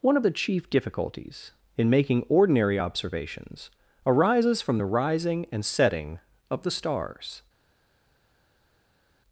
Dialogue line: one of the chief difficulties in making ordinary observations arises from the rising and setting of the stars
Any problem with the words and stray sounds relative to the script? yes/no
no